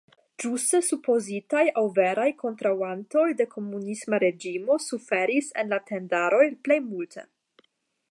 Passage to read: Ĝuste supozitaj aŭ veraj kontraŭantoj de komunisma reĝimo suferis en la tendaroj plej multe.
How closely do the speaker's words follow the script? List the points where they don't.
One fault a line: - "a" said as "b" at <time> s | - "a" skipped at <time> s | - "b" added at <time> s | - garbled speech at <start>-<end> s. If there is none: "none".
none